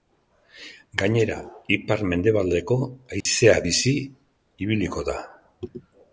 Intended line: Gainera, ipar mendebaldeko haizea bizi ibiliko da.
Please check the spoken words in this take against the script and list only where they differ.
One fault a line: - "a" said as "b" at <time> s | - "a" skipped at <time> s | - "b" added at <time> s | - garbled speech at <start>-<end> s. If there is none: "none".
none